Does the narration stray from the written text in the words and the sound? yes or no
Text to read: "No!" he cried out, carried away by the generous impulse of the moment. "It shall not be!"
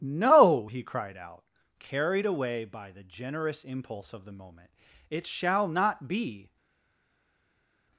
no